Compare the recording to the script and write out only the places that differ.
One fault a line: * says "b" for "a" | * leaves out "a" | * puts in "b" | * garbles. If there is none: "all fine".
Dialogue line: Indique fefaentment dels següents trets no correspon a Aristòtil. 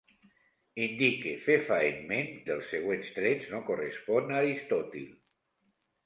all fine